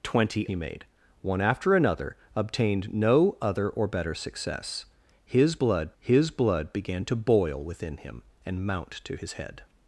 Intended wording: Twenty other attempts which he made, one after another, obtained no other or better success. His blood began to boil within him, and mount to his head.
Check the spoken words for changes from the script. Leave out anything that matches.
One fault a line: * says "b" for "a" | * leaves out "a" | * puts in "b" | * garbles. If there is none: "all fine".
* leaves out "other attempts which"
* puts in "his blood"